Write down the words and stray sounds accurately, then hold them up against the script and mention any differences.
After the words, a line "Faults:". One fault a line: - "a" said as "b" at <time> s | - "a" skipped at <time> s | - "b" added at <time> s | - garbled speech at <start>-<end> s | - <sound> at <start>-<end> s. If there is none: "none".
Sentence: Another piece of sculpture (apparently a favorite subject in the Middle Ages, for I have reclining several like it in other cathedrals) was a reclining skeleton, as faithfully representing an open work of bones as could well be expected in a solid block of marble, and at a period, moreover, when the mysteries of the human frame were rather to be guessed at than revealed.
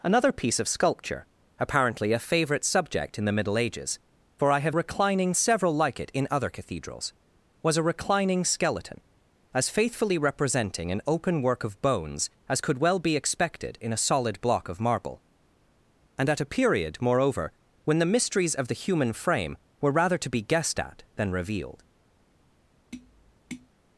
Another piece of sculpture (apparently a favorite subject in the Middle Ages, for I have reclining several like it in other cathedrals) was a reclining skeleton, as faithfully representing an open work of bones as could well be expected in a solid block of marble, and at a period, moreover, when the mysteries of the human frame were rather to be guessed at than revealed.
Faults:
- tap at 22.9-23.7 s